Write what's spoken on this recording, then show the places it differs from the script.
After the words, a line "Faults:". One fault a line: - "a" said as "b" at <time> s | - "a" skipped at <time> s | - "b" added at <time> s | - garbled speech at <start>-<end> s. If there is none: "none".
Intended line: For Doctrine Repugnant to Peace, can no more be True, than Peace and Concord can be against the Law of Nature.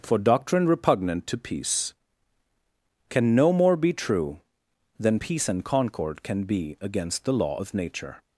For Doctrine Repugnant to Peace, can no more be True, than Peace and Concord can be against the Law of Nature.
Faults:
none